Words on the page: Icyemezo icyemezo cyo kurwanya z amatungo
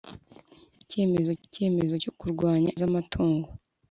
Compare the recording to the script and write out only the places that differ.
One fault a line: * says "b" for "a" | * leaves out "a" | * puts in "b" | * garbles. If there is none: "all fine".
all fine